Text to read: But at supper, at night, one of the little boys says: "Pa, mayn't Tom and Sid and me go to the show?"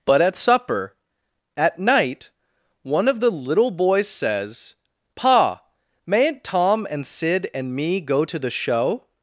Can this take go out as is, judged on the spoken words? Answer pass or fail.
pass